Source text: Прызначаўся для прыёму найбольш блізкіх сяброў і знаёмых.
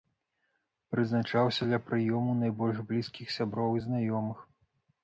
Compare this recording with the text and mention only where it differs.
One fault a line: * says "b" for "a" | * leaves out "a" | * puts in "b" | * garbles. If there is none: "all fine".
all fine